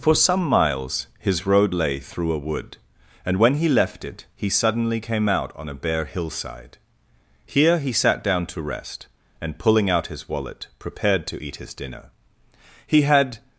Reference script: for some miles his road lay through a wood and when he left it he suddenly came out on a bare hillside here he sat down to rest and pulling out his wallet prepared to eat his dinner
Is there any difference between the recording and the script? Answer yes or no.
yes